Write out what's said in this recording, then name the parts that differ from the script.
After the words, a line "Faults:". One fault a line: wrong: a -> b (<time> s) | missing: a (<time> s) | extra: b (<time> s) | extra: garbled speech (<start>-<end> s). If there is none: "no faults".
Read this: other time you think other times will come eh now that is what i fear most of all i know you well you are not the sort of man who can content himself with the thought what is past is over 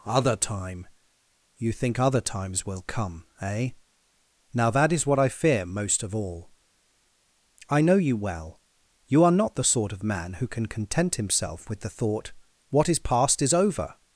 other time you think other times will come eh now that is what i fear most of all i know you well you are not the sort of man who can content himself with the thought what is past is over
Faults:
no faults